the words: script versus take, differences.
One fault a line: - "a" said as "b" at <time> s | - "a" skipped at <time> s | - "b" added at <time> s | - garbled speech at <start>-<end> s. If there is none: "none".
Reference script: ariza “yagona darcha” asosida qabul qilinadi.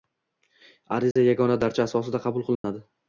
none